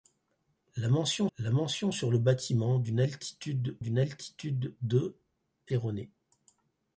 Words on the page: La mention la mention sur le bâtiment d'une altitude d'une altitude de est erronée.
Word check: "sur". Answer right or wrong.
right